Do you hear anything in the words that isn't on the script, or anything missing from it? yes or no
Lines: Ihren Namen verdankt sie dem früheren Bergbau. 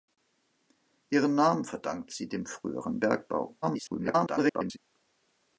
yes